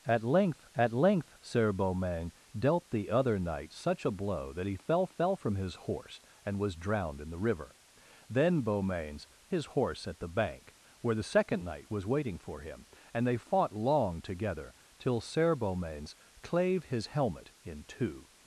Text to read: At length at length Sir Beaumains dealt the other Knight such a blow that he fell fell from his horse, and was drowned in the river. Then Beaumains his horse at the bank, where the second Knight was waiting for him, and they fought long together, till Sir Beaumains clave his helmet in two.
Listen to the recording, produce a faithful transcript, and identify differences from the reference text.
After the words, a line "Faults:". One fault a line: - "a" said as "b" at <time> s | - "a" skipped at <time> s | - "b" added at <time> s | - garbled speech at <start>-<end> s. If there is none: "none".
At length at length Sir Beaumains dealt the other Knight such a blow that he fell fell from his horse, and was drowned in the river. Then Beaumains his horse at the bank, where the second Knight was waiting for him, and they fought long together, till Sir Beaumains clave his helmet in two.
Faults:
none